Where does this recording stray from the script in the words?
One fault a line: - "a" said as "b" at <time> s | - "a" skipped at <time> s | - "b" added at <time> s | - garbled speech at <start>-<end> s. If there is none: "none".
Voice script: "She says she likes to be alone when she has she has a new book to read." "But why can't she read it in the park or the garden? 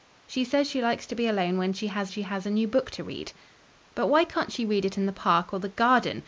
none